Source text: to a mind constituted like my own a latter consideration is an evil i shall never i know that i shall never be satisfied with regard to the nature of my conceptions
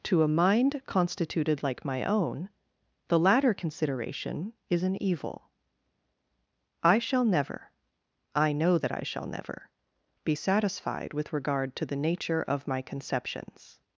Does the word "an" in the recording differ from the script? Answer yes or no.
no